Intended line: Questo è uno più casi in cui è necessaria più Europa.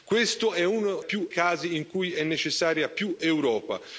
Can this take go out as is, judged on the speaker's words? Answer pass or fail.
pass